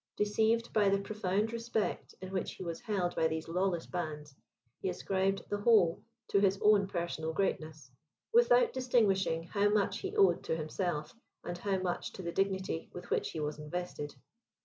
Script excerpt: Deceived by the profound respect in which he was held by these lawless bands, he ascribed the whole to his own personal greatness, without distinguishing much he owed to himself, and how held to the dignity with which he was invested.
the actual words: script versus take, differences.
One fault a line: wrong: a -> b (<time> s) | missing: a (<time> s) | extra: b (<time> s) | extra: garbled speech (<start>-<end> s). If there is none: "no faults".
extra: how (9.4 s)
wrong: held -> much (11.8 s)